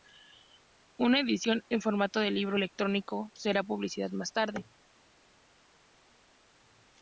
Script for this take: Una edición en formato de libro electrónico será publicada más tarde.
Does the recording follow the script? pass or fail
pass